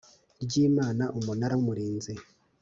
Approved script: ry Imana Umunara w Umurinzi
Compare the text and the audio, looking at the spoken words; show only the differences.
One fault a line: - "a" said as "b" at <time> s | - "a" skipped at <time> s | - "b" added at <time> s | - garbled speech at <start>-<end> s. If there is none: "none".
none